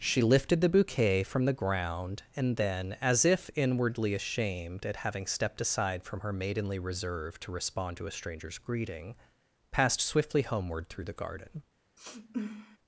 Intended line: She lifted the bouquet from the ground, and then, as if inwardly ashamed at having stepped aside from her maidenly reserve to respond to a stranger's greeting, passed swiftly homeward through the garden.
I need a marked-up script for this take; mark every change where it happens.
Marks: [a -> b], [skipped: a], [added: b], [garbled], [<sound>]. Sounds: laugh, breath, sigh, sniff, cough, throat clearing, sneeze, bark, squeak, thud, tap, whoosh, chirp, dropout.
She lifted the bouquet from the ground, and then, as if inwardly ashamed at having stepped aside from her maidenly reserve to respond to a stranger's greeting, passed swiftly homeward through the garden. [sniff]